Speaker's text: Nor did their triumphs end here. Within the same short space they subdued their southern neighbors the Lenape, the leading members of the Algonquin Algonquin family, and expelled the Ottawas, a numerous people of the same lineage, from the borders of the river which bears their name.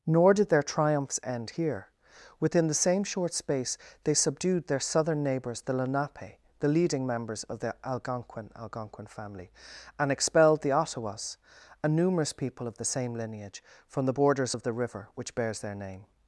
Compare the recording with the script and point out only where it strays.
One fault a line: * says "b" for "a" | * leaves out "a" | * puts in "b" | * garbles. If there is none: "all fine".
all fine